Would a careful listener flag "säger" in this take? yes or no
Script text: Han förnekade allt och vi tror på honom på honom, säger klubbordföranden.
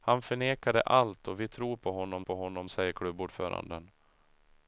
no